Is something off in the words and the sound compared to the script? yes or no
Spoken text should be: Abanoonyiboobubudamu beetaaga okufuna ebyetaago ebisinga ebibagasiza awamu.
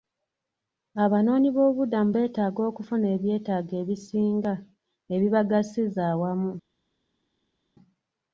no